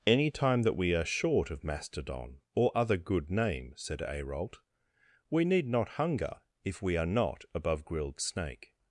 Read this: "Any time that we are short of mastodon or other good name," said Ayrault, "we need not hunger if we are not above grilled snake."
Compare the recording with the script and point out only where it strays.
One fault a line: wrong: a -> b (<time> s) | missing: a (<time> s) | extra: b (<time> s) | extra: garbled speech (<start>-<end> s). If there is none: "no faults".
no faults